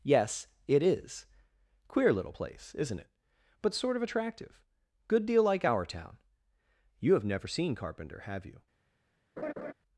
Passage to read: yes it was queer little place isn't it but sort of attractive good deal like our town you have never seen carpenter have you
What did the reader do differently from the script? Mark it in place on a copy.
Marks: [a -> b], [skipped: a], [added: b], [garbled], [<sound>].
yes it [was -> is] queer little place isn't it but sort of attractive good deal like our town you have never seen carpenter have you [laugh]